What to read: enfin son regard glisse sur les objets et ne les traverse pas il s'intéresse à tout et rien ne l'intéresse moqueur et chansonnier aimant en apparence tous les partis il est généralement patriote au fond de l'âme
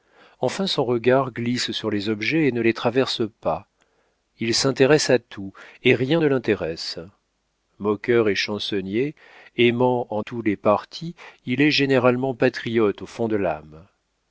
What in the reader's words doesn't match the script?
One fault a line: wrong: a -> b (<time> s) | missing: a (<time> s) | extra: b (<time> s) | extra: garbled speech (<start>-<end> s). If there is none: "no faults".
missing: apparence (10.2 s)